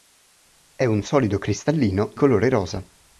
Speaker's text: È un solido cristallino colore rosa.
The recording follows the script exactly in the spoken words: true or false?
true